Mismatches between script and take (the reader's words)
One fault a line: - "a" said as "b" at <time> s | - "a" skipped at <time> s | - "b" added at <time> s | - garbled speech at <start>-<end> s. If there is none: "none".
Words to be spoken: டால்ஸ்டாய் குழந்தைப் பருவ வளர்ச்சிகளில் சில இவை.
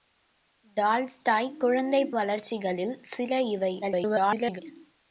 - "பருவ" skipped at 2.1 s
- garbled speech at 3.8-4.6 s